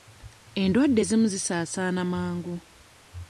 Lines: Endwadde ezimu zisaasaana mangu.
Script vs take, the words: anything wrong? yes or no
no